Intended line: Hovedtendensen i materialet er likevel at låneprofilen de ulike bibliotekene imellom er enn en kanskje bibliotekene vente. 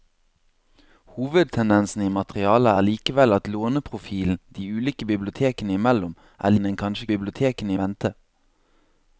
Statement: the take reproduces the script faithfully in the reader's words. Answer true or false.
true